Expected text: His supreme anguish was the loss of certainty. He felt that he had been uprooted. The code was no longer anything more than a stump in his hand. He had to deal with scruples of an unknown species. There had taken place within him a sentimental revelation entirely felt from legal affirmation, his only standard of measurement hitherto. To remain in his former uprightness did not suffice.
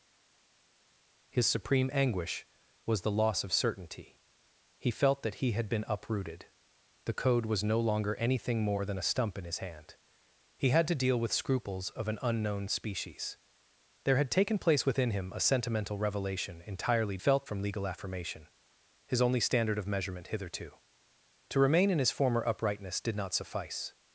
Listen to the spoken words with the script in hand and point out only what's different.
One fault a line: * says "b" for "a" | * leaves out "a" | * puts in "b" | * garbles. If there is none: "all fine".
all fine